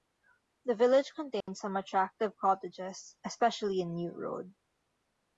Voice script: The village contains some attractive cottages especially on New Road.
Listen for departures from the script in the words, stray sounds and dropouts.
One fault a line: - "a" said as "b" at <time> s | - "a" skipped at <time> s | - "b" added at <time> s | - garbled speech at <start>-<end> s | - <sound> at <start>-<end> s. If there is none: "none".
- dropout at 1.4-1.5 s
- "on" said as "in" at 3.8 s